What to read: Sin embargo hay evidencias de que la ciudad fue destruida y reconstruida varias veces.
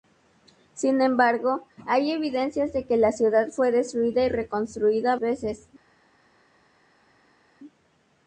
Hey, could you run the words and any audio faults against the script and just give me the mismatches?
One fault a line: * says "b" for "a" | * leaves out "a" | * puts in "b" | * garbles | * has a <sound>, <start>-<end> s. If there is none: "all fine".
* leaves out "varias"